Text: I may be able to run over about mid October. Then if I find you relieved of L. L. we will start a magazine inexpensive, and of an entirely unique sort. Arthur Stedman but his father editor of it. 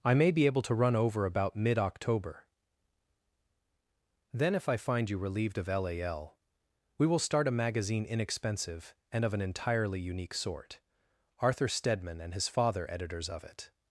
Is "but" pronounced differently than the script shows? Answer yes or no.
yes